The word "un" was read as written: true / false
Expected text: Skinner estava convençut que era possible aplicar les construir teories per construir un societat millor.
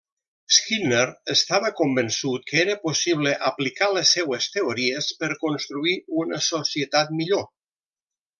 false